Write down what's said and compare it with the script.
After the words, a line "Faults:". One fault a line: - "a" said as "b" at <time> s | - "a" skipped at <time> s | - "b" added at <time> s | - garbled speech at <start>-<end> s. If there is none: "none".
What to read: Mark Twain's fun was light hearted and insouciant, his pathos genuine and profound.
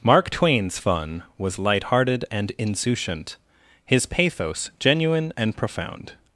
Mark Twain's fun was light hearted and insouciant, his pathos genuine and profound.
Faults:
none